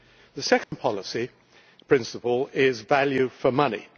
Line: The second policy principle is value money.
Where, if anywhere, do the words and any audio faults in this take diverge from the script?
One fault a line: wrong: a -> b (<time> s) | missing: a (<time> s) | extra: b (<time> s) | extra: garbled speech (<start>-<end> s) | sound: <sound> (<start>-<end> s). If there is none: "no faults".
sound: dropout (0.6-0.7 s)
extra: for (3.3 s)